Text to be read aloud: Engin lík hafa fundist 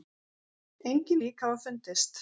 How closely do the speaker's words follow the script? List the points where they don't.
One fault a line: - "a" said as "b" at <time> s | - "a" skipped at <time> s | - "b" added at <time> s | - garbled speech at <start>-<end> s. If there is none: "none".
none